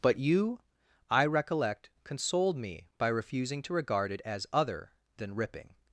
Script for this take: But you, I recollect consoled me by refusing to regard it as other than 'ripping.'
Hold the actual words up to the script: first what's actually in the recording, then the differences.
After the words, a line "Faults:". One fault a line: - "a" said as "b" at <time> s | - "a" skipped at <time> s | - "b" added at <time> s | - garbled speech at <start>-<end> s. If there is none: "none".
But you, I recollect consoled me by refusing to regard it as other than 'ripping.'
Faults:
none